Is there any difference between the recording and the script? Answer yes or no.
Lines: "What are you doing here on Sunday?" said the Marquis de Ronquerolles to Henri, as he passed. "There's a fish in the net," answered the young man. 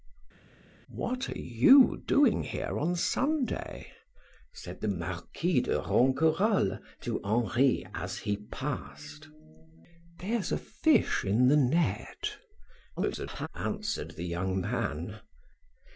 yes